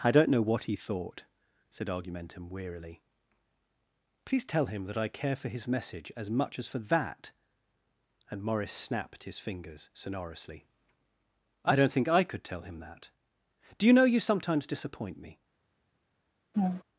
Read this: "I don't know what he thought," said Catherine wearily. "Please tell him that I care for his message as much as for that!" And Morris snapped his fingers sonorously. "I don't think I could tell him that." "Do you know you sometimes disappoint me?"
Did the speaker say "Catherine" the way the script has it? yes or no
no